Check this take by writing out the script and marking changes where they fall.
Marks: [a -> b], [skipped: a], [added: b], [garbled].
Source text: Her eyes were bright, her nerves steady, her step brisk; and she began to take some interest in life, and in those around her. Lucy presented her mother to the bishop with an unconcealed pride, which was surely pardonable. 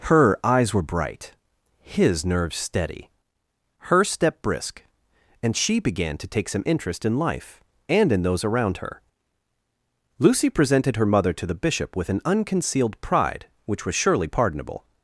Her eyes were bright, [her -> his] nerves steady, her step brisk; and she began to take some interest in life, and in those around her. Lucy presented her mother to the bishop with an unconcealed pride, which was surely pardonable.